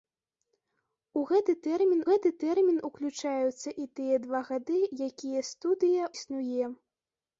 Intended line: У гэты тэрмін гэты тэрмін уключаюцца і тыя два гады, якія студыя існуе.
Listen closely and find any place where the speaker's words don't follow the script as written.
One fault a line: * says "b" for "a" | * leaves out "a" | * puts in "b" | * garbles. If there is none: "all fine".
all fine